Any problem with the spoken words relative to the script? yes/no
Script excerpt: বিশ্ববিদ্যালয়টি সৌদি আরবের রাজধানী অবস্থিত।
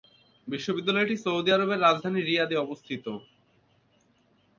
yes